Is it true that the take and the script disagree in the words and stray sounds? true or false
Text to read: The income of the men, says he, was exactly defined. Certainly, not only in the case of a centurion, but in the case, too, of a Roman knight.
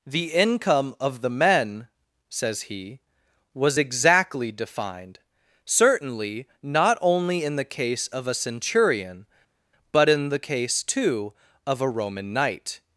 false